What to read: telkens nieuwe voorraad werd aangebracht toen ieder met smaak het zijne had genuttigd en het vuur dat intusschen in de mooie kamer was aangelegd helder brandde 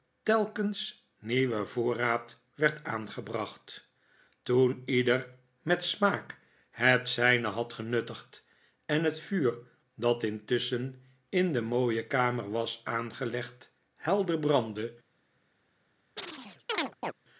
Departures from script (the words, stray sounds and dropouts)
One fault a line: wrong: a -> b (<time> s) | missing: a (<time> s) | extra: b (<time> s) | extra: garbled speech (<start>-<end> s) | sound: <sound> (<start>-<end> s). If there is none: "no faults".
sound: chirp (16.2-17.1 s)